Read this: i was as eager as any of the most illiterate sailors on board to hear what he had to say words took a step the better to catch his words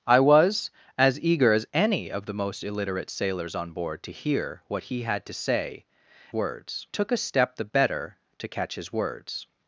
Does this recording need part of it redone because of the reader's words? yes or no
no